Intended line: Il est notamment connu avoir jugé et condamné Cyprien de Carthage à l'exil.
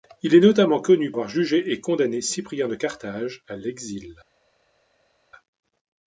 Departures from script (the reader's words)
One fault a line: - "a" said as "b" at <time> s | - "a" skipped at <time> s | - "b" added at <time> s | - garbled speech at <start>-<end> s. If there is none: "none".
none